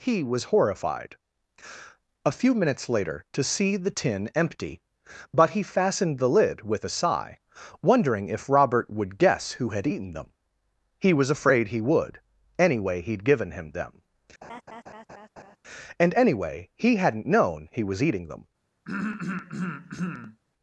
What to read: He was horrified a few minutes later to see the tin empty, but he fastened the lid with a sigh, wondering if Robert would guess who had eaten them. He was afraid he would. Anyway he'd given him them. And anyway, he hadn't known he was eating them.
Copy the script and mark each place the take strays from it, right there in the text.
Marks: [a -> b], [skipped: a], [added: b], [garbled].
He was horrified a few minutes later to see the tin empty, but he fastened the lid with a sigh, wondering if Robert would guess who had eaten them. He was afraid he would. Anyway he'd given him them. And anyway, he hadn't known he was eating them.